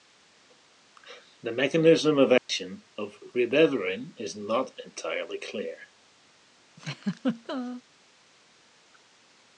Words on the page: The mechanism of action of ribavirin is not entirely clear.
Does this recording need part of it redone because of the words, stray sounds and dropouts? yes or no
yes